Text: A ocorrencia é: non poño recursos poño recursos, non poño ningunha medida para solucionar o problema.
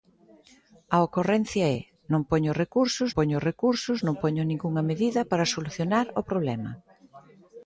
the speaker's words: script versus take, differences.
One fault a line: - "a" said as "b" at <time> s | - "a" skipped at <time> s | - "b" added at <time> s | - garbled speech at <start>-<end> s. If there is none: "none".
none